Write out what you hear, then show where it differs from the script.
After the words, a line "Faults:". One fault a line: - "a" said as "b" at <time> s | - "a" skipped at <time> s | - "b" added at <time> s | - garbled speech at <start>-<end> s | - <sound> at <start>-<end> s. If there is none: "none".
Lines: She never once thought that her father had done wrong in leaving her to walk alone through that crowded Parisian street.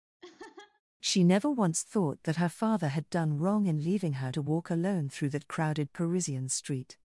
She never once thought that her father had done wrong in leaving her to walk alone through that crowded Parisian street.
Faults:
- laugh at 0.2-0.8 s